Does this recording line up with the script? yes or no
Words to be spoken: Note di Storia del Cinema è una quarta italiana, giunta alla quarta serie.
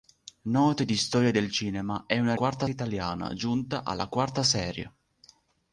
yes